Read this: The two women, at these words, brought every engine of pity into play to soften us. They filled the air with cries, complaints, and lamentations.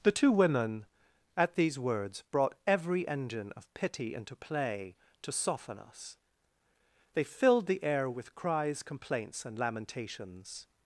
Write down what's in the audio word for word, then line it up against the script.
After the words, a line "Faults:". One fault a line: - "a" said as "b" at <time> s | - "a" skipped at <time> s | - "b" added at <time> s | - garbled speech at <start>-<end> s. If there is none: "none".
The two women, at these words, brought every engine of pity into play to soften us. They filled the air with cries, complaints, and lamentations.
Faults:
none